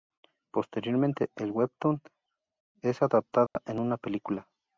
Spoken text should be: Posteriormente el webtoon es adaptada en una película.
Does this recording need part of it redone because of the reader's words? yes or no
no